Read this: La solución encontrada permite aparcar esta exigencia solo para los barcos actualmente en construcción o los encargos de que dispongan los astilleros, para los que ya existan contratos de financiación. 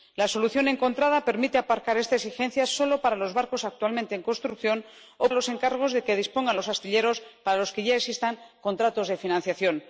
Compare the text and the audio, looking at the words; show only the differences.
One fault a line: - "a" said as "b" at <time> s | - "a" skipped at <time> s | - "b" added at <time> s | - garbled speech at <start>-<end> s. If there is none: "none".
none